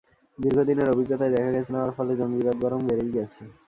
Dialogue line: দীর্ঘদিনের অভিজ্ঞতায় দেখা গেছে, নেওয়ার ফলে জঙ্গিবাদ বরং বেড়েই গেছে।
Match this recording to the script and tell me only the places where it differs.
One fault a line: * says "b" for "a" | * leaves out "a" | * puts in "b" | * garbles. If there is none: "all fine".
all fine